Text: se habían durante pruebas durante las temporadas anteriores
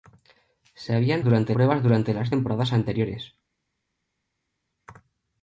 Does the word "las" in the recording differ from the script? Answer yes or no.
no